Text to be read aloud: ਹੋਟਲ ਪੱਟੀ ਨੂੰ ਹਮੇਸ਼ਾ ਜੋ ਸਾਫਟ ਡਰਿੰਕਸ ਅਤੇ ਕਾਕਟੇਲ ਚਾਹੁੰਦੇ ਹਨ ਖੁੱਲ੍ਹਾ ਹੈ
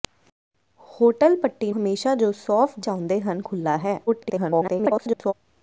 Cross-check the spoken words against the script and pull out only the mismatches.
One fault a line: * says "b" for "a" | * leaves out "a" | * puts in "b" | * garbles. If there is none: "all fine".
* leaves out "ਨੂੰ"
* leaves out "ਡਰਿੰਕਸ ਅਤੇ ਕਾਕਟੇਲ"
* garbles